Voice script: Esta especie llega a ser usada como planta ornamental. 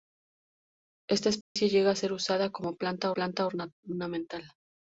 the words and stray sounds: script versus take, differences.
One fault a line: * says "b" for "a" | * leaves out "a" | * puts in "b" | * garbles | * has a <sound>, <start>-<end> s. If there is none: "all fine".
* has a dropout, 1.4-1.6 s
* puts in "planta"